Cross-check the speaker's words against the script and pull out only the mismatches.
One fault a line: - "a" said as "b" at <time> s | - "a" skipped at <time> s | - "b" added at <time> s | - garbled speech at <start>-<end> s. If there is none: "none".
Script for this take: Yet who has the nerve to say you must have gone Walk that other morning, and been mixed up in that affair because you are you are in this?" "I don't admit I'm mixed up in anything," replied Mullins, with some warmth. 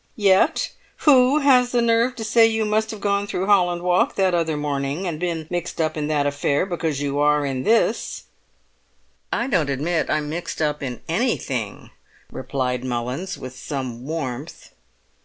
- "through Holland" added at 3.3 s
- "you are" skipped at 7.4 s